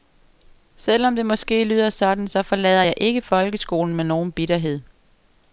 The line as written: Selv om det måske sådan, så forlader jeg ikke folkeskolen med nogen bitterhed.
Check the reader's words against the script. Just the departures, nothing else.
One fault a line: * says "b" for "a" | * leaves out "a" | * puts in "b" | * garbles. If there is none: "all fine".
* puts in "lyder"